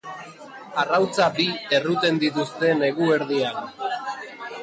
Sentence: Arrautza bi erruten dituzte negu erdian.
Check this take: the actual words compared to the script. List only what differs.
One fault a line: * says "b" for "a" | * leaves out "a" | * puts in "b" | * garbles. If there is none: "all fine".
all fine